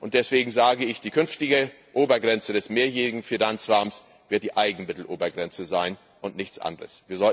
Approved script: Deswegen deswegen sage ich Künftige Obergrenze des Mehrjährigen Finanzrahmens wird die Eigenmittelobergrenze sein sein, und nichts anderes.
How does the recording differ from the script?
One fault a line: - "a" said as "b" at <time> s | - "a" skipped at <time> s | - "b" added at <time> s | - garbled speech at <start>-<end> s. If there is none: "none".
- "deswegen" skipped at 0.5 s
- "Die" added at 1.0 s
- "sein" skipped at 6.0 s